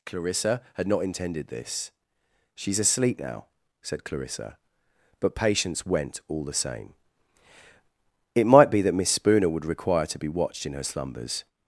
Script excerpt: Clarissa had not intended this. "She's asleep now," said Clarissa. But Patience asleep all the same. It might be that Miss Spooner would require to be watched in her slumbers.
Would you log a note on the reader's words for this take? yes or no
yes